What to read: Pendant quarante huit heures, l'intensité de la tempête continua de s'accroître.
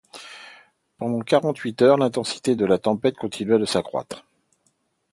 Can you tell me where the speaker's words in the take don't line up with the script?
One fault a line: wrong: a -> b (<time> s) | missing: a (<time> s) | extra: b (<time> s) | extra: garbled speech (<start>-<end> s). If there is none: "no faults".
no faults